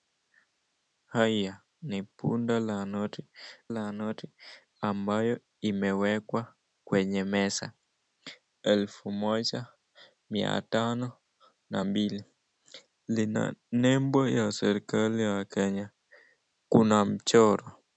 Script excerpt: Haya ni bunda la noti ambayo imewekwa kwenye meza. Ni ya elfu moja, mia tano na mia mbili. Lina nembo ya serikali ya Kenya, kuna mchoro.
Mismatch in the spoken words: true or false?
true